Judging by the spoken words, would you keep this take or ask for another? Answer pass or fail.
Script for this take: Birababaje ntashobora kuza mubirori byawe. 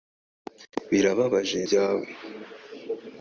fail